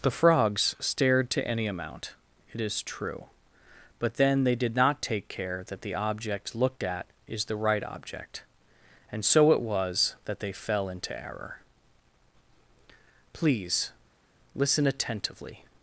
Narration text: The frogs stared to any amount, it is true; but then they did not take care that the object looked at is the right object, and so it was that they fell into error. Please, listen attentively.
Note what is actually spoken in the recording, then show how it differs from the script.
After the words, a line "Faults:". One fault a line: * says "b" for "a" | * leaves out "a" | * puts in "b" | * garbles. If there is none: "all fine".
The frogs stared to any amount, it is true; but then they did not take care that the object looked at is the right object, and so it was that they fell into error. Please, listen attentively.
Faults:
all fine